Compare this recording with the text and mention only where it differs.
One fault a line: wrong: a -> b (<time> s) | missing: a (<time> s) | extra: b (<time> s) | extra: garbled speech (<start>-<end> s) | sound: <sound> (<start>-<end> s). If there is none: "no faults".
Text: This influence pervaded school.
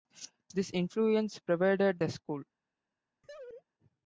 extra: the (2.0 s)
sound: laugh (3.2-3.6 s)